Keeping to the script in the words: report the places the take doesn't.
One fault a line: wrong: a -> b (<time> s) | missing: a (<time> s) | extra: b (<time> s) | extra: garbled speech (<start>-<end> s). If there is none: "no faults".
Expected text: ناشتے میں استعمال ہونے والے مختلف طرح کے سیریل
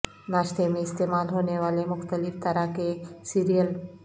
no faults